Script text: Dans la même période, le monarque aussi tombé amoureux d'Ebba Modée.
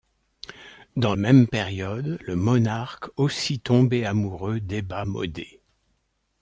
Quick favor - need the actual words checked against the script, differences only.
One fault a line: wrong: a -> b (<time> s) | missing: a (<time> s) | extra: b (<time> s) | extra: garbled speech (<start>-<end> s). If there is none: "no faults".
missing: la (1.1 s)